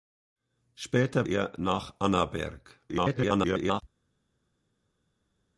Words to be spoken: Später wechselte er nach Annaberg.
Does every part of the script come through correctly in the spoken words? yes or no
no